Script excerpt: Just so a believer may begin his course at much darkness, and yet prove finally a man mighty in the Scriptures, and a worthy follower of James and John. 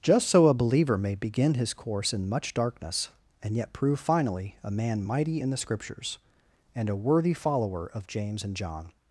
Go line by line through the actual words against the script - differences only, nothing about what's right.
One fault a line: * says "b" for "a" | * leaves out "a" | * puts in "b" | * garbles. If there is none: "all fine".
* says "in" for "at"